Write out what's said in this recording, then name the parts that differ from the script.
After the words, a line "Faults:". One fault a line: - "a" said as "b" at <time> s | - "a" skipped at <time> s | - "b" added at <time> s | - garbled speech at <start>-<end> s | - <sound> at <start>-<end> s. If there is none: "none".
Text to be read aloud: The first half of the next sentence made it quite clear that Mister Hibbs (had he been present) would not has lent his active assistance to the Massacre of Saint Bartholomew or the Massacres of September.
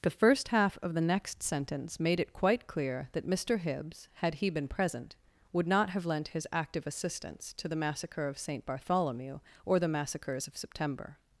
The first half of the next sentence made it quite clear that Mister Hibbs (had he been present) would not have lent his active assistance to the Massacre of Saint Bartholomew or the Massacres of September.
Faults:
- "has" said as "have" at 5.9 s